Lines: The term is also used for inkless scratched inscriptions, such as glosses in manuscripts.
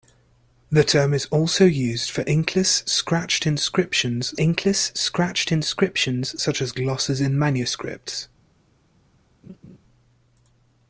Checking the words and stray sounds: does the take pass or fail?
fail